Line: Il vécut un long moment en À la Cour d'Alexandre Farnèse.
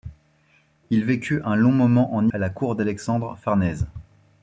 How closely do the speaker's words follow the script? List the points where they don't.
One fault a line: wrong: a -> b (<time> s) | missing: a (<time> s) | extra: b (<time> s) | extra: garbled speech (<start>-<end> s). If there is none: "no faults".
no faults